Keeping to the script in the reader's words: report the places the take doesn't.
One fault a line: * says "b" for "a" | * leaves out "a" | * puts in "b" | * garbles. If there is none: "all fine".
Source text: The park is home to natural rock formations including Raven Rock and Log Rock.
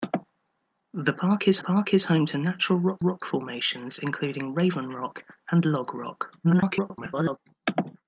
* puts in "park is"
* puts in "rock"
* garbles